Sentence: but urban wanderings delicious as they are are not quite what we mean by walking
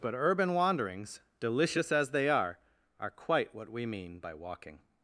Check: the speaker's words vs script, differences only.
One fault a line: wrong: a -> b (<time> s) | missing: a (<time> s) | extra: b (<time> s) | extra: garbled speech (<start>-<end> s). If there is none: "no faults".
missing: not (3.1 s)